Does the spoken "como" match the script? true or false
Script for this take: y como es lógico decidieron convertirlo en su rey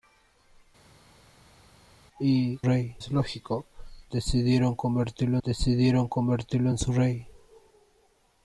false